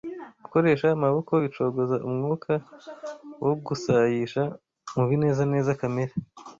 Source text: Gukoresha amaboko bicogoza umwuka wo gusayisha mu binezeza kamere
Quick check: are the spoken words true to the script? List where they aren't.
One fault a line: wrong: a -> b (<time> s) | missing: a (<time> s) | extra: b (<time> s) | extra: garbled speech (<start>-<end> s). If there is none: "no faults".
no faults